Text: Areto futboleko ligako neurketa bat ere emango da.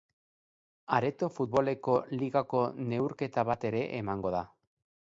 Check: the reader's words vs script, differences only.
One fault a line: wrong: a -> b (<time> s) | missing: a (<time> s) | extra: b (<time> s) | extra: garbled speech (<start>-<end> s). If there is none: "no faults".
no faults